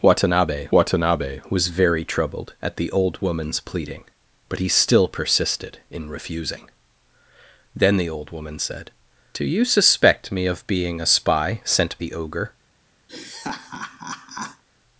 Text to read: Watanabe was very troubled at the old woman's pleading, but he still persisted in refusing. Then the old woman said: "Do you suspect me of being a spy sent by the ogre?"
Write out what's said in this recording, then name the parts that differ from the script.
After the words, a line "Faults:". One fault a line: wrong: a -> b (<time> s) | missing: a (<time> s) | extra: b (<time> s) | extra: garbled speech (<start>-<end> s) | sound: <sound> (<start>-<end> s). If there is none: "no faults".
Watanabe watanabe was very troubled at the old woman's pleading, but he still persisted in refusing. Then the old woman said: "Do you suspect me of being a spy sent the ogre?"
Faults:
extra: watanabe (0.7 s)
missing: by (12.0 s)
sound: laugh (13.1-14.6 s)